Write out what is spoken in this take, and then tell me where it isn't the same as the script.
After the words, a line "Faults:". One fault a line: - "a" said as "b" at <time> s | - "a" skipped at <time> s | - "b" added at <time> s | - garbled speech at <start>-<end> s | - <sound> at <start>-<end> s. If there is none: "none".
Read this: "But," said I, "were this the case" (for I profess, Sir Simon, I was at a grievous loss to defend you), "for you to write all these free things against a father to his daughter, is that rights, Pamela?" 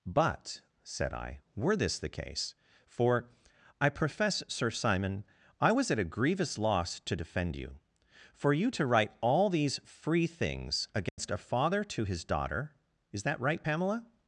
"But," said I, "were this the case" (for I profess, Sir Simon, I was at a grievous loss to defend you), "for you to write all these free things against a father to his daughter, is that right, Pamela?"
Faults:
- dropout at 11.1-11.2 s
- "rights" said as "right" at 13.4 s